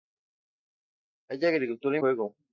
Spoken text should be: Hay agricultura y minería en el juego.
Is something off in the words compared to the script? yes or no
yes